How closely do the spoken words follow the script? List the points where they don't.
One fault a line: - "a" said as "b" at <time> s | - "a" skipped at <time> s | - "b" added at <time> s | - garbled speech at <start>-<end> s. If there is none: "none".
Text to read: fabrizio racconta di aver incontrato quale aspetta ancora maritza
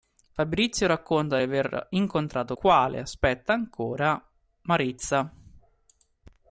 none